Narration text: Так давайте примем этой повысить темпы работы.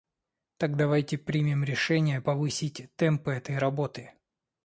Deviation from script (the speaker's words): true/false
true